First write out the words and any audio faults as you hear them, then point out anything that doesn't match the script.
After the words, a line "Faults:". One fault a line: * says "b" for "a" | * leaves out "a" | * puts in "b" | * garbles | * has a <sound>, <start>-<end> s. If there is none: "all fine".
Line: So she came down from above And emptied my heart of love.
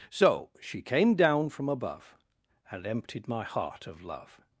So she came down from above And emptied my heart of love.
Faults:
all fine